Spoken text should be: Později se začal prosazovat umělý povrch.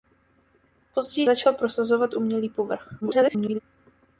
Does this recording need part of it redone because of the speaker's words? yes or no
yes